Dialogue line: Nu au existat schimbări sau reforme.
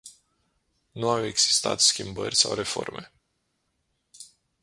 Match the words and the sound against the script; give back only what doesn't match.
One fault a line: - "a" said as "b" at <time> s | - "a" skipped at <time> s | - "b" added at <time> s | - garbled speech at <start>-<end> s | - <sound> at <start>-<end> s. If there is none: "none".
none